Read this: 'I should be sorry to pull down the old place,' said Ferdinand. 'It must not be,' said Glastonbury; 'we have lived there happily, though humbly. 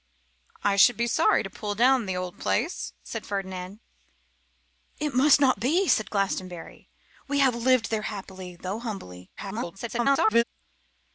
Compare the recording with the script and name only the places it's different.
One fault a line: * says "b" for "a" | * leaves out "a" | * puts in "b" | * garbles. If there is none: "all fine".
* garbles